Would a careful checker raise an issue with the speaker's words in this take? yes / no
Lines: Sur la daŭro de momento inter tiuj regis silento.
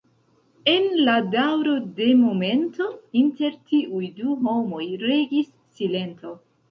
yes